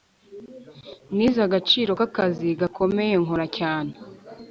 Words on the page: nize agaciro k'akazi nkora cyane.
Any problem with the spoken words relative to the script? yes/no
yes